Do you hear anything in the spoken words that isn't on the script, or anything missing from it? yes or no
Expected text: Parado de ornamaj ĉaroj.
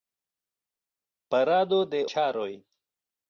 yes